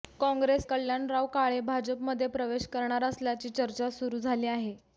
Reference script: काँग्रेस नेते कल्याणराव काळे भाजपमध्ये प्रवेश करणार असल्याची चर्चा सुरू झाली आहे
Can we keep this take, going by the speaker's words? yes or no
no